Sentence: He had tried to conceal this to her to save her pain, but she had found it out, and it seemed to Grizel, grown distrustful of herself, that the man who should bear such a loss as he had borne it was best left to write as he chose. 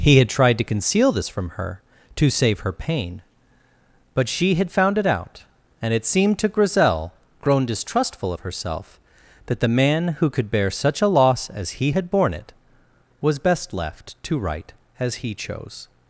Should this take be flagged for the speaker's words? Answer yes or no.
yes